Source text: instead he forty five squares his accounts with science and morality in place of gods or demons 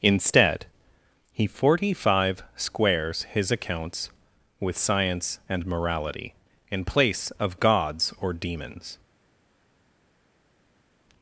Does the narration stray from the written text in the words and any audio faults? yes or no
no